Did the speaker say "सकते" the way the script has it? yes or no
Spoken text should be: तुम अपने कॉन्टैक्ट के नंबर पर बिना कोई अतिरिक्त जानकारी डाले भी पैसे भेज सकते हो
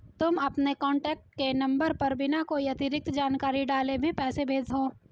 no